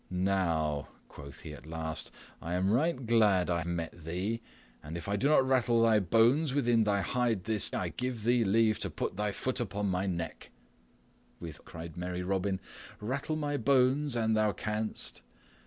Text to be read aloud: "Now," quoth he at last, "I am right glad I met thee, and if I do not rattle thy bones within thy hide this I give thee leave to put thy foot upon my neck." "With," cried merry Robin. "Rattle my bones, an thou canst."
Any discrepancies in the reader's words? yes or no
no